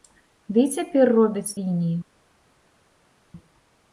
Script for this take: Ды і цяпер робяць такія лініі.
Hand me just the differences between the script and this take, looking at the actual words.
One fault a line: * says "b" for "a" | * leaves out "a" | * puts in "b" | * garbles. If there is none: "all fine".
* leaves out "такія"